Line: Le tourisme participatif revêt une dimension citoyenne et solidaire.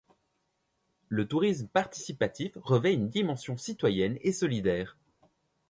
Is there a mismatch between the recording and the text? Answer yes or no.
no